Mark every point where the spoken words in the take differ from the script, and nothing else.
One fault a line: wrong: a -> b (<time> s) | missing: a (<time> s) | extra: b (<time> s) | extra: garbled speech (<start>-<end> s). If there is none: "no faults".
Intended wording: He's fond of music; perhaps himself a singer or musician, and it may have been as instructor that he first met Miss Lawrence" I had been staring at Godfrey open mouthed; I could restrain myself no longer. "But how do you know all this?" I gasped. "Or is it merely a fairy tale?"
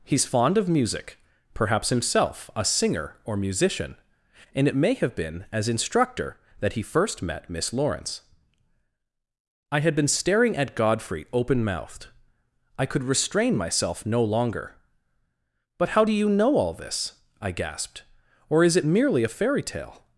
no faults